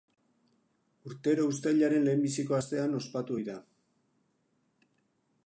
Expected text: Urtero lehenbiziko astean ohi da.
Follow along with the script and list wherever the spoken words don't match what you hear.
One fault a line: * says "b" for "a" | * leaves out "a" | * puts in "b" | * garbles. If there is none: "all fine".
* puts in "uztailaren"
* puts in "ospatu"